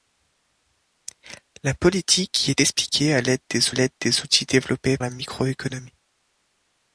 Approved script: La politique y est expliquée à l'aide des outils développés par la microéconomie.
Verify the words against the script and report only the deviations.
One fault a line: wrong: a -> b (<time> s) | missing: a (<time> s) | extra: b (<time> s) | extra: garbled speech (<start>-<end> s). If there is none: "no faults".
extra: l'aide des (3.7 s)
missing: par (5.0 s)